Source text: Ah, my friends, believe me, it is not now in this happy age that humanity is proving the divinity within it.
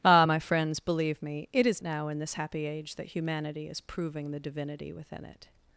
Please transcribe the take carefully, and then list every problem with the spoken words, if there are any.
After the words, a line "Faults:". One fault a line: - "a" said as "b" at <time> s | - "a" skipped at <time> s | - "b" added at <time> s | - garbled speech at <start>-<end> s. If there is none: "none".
Ah, my friends, believe me, it is now in this happy age that humanity is proving the divinity within it.
Faults:
- "not" skipped at 1.8 s